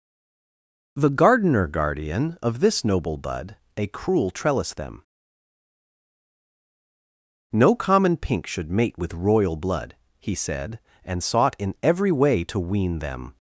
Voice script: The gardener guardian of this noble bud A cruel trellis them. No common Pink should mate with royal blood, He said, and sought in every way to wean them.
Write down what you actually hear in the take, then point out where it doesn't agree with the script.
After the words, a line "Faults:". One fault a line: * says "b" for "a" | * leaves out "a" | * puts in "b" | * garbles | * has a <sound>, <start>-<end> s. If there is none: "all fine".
The gardener guardian of this noble bud A cruel trellis them. No common Pink should mate with royal blood, He said, and sought in every way to wean them.
Faults:
all fine